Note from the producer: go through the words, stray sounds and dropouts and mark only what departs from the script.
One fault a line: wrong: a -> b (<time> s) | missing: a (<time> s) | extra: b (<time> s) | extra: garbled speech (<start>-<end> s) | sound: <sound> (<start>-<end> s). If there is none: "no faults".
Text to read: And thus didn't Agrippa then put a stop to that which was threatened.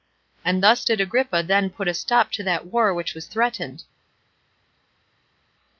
wrong: didn't -> did (0.8 s)
extra: war (2.7 s)